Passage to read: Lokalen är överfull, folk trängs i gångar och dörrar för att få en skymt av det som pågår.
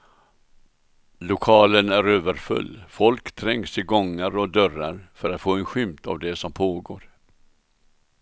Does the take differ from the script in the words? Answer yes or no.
no